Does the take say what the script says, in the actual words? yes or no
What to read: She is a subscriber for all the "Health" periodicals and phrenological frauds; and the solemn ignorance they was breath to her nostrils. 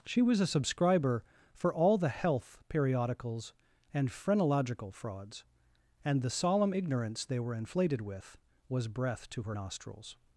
no